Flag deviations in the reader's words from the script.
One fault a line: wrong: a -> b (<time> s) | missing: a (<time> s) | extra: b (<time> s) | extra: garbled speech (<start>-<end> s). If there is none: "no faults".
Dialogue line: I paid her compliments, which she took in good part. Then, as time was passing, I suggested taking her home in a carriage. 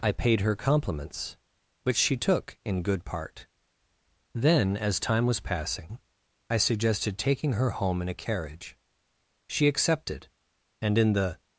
extra: She accepted and in the (9.5 s)